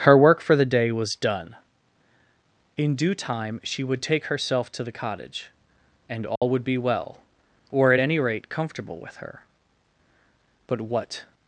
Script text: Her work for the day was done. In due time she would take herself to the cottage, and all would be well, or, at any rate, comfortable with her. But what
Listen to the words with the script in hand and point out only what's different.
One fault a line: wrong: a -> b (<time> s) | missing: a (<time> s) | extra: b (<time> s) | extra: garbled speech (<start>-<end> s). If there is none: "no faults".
no faults